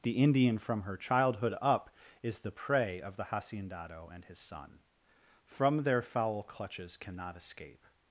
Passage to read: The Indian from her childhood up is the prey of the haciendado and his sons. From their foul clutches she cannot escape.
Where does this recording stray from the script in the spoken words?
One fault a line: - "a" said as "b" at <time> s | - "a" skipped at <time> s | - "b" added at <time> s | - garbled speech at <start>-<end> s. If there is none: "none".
- "sons" said as "son" at 4.4 s
- "she" skipped at 7.0 s